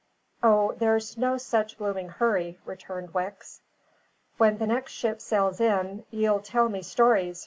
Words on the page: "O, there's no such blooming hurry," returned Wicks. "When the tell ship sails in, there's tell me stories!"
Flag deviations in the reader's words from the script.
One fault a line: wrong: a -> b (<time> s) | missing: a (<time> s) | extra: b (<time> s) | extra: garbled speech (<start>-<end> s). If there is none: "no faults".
wrong: tell -> next (4.7 s)
wrong: there's -> ye'll (6.1 s)